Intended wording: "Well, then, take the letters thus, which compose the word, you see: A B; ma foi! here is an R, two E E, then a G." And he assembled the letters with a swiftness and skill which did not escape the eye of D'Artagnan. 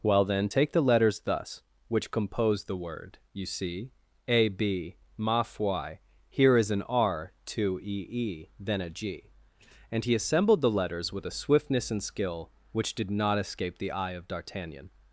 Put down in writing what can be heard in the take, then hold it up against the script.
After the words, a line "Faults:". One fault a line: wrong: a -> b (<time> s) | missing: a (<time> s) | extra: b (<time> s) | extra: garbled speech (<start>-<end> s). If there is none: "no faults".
"Well, then, take the letters thus, which compose the word, you see: A B; ma foi! here is an R, two E E, then a G." And he assembled the letters with a swiftness and skill which did not escape the eye of D'Artagnan.
Faults:
no faults